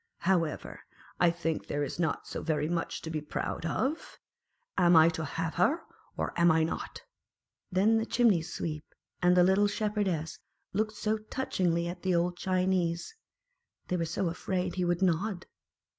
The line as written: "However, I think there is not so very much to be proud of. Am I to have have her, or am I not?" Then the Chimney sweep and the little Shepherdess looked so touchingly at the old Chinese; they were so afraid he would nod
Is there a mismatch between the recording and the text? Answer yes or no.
yes